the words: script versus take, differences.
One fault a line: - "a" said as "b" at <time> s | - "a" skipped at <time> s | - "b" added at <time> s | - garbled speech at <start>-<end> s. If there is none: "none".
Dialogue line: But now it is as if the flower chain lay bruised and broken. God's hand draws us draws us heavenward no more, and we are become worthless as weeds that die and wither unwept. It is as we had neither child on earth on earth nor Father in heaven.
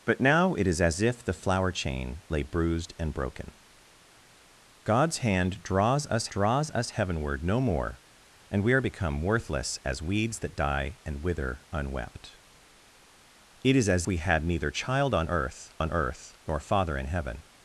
none